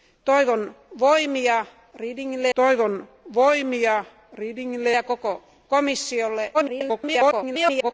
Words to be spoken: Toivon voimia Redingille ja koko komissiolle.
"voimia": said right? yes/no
yes